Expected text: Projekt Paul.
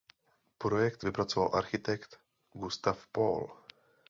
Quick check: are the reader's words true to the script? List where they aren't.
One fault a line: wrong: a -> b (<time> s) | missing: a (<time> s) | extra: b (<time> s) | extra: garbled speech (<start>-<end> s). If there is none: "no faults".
extra: vypracoval architekt Gustav (1.0 s)